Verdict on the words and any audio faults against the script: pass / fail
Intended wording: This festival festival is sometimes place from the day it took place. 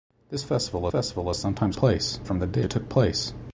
pass